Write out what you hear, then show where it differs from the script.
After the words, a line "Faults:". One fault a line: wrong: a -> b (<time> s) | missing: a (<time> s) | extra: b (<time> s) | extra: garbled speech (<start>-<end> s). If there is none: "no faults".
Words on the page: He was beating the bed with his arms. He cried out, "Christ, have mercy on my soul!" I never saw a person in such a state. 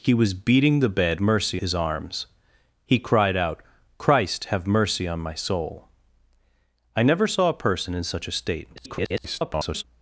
He was beating the bed mercy his arms. He cried out, "Christ, have mercy on my soul!" I never saw a person in such a state. [garbled]
Faults:
wrong: with -> mercy (1.2 s)
extra: garbled speech (8.8-9.8 s)